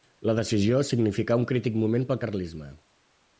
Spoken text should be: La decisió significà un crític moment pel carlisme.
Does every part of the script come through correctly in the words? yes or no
yes